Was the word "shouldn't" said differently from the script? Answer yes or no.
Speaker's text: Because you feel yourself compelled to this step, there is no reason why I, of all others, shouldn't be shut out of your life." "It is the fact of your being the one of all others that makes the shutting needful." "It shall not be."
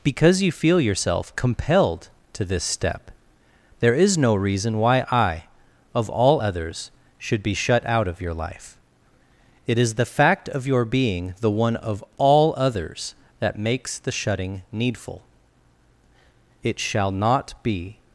yes